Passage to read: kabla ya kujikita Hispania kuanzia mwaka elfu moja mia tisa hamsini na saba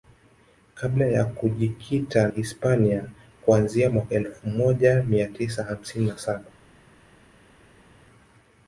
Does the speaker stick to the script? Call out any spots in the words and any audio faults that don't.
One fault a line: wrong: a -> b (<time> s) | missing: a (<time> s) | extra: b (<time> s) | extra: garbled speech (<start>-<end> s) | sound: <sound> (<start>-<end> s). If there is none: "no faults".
no faults